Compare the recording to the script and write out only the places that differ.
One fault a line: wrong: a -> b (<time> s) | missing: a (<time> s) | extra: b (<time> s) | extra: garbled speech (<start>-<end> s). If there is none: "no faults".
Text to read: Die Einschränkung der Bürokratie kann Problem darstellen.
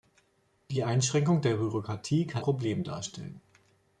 no faults